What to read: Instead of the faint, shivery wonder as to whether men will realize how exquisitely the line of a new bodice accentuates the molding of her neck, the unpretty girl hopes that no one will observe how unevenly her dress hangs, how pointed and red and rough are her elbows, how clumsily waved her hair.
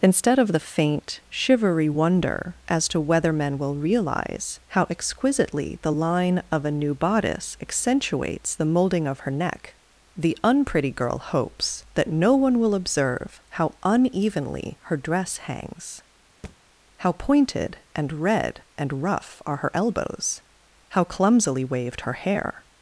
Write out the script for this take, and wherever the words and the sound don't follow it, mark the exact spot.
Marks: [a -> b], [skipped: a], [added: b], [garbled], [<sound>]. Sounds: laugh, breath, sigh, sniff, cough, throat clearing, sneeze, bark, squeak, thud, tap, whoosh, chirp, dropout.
Instead of the faint, shivery wonder as to whether men will realize how exquisitely the line of a new bodice accentuates the molding of her neck, the unpretty girl hopes that no one will observe how unevenly her dress hangs, [thud] how pointed and red and rough are her elbows, how clumsily waved her hair.